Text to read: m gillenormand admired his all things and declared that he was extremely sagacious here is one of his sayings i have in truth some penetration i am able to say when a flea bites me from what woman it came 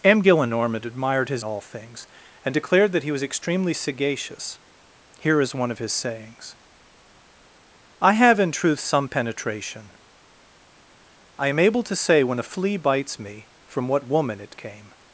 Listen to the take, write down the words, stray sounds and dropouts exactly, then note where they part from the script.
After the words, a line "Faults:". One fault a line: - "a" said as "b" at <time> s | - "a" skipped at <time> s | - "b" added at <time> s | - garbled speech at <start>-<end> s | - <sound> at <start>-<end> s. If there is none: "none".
m gillenormand admired his all things and declared that he was extremely sagacious here is one of his sayings i have in truth some penetration i am able to say when a flea bites me from what woman it came
Faults:
none